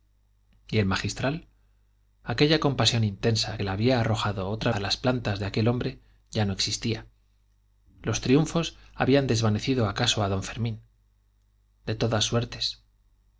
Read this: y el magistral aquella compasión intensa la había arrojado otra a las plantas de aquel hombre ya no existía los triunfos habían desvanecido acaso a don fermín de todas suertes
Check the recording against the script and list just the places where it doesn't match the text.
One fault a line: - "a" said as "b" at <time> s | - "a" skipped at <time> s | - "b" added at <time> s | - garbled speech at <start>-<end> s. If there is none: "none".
none